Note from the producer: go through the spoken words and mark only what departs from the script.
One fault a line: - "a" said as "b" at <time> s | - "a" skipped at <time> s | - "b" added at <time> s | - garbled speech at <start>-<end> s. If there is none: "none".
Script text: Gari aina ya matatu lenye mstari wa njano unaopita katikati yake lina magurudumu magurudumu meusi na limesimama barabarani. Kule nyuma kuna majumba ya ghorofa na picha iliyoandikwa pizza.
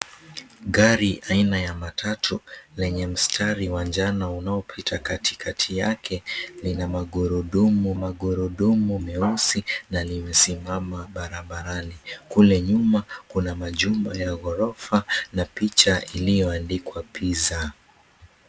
none